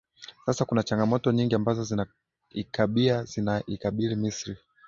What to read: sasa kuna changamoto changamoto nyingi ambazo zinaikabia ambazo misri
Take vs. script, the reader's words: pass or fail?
fail